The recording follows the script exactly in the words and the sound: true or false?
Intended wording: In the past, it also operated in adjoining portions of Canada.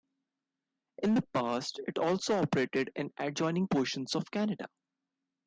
true